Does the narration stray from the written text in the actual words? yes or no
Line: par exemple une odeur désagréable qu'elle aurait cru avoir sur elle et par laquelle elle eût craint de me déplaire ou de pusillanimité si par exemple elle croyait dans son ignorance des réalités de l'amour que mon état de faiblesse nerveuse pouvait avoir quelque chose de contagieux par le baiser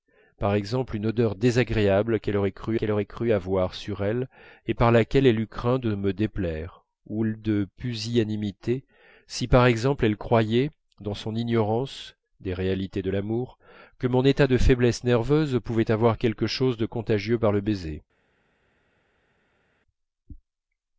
yes